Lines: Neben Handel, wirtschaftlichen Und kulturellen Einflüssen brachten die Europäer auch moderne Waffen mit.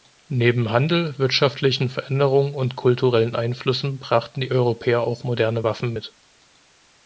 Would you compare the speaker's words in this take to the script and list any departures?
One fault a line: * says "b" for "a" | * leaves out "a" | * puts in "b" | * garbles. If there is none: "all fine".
* puts in "Veränderungen"